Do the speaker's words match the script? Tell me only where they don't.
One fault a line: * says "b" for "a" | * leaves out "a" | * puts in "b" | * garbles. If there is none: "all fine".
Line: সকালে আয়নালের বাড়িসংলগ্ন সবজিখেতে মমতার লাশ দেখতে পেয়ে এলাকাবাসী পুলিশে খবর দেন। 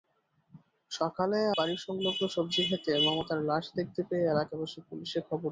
* leaves out "আয়নালের"